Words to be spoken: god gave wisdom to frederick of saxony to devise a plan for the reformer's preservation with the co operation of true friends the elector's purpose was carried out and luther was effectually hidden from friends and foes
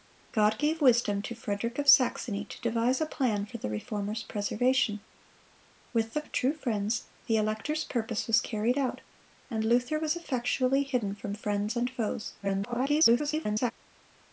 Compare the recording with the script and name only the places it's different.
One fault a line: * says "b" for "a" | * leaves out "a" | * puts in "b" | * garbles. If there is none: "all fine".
* leaves out "co operation"
* garbles